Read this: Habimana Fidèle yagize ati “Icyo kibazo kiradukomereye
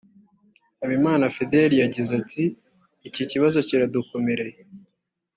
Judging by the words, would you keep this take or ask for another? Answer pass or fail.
fail